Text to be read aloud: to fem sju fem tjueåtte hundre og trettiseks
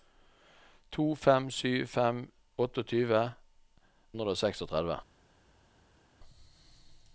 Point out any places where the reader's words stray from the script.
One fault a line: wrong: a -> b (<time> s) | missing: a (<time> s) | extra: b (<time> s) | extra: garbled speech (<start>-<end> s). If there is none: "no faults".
no faults